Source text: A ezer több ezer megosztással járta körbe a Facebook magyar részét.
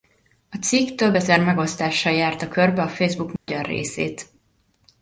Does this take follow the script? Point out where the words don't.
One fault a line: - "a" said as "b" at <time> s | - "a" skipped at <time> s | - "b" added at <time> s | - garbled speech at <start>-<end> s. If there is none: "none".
- "ezer" said as "cikk" at 0.6 s